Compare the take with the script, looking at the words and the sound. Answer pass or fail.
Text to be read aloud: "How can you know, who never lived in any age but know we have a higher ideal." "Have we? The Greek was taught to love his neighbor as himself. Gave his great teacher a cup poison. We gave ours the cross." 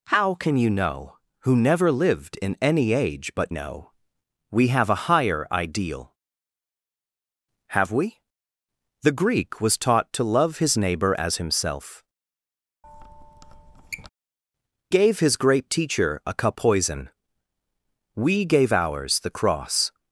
fail